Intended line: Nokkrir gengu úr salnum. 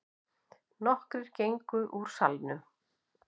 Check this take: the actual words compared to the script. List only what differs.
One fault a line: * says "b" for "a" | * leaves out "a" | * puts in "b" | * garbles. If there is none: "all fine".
all fine